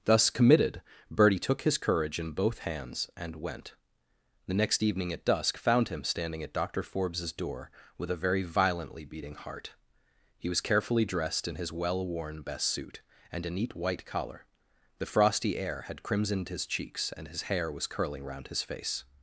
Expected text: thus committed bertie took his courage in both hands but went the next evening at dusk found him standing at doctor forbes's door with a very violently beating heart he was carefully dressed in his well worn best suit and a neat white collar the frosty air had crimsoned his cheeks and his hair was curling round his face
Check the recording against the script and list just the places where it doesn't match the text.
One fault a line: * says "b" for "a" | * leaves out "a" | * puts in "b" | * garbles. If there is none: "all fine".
* says "and" for "but"